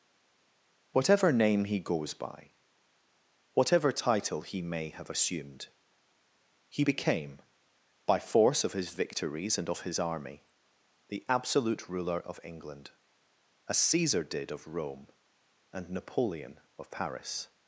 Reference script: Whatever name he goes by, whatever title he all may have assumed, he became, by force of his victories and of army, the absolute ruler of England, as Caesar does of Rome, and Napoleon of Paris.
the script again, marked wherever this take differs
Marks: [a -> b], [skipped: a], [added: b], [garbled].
Whatever name he goes by, whatever title he [skipped: all] may have assumed, he became, by force of his victories and of [added: his] army, the absolute ruler of England, as Caesar [does -> did] of Rome, and Napoleon of Paris.